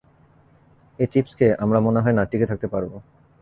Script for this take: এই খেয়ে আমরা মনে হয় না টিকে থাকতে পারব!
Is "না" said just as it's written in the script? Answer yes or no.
yes